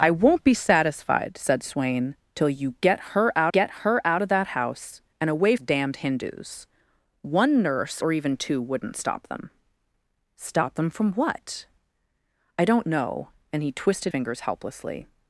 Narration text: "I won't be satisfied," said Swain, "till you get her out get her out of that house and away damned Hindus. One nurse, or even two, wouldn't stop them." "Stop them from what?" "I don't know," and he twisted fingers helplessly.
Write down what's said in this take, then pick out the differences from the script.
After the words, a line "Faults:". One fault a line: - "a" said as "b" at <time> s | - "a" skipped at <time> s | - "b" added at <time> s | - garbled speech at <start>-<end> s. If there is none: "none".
"I won't be satisfied," said Swain, "till you get her out get her out of that house and away damned Hindus. One nurse, or even two, wouldn't stop them." "Stop them from what?" "I don't know," and he twisted fingers helplessly.
Faults:
none